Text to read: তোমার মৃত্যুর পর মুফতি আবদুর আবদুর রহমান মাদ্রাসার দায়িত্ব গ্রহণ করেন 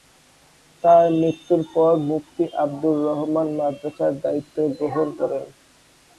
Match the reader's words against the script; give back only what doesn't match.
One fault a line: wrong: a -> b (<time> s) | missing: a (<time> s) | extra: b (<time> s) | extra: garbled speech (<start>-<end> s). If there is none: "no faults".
wrong: তোমার -> তার (0.8 s)
missing: আবদুর (3.0 s)